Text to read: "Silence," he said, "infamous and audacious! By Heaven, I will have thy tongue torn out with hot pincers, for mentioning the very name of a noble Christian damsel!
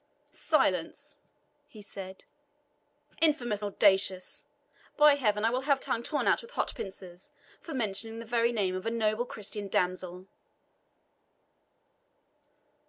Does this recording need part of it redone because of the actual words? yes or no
yes